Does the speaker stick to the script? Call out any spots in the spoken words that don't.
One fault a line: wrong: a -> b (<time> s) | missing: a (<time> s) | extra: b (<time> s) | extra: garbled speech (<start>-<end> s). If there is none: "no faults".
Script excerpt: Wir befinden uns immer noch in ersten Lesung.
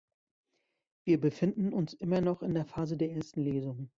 extra: der Phase der (2.5 s)